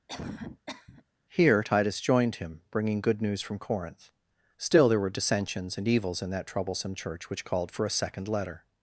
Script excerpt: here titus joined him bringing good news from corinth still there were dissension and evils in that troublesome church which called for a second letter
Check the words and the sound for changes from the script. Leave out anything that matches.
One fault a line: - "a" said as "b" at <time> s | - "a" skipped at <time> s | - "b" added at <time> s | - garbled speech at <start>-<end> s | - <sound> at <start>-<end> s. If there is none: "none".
- cough at 0.1-1.0 s
- "dissension" said as "dissensions" at 5.1 s